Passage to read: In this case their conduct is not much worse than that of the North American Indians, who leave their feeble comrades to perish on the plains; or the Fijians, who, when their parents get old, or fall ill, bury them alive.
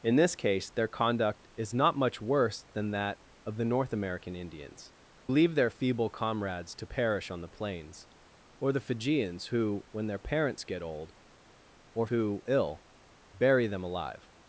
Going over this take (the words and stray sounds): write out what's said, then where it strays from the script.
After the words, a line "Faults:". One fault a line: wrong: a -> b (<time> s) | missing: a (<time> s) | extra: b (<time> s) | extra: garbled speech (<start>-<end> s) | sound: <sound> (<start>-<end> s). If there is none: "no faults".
In this case their conduct is not much worse than that of the North American Indians, leave their feeble comrades to perish on the plains; or the Fijians, who, when their parents get old, or who ill, bury them alive.
Faults:
missing: who (4.9 s)
wrong: fall -> who (12.1 s)